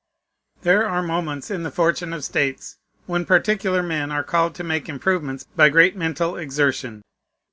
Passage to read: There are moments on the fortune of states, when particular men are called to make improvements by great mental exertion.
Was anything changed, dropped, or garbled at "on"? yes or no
yes